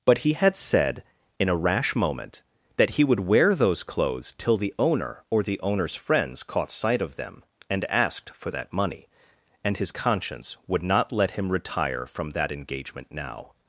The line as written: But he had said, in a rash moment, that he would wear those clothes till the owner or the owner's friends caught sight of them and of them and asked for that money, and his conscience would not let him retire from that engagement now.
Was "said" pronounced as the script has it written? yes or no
yes